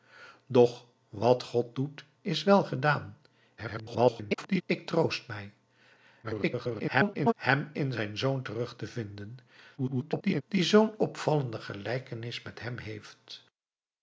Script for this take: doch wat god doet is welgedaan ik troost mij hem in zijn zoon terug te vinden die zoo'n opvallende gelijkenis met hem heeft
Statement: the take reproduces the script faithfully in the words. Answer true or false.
false